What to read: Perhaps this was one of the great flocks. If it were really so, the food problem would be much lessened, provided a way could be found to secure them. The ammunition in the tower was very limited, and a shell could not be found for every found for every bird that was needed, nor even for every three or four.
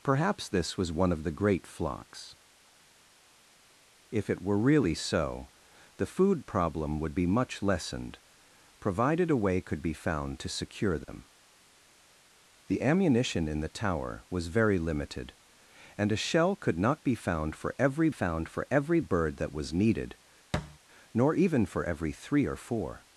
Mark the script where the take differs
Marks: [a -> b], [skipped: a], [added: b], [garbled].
Perhaps this was one of the great flocks. If it were really so, the food problem would be much lessened, provided a way could be found to secure them. The ammunition in the tower was very limited, and a shell could not be found for every found for every bird that was needed, nor even for every three or four.